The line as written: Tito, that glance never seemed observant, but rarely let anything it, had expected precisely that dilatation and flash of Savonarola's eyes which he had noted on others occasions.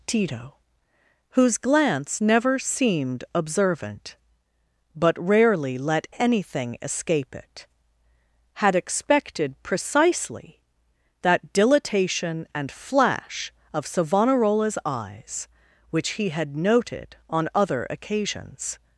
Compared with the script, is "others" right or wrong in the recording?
wrong